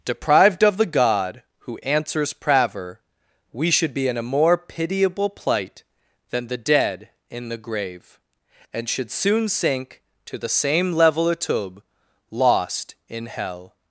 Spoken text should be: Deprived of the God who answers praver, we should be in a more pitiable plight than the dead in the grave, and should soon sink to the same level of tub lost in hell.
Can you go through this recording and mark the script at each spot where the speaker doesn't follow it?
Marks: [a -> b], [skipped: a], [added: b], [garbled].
Deprived of the God who answers praver, we should be in a more pitiable plight than the dead in the grave, and should soon sink to the same level of tub lost in hell.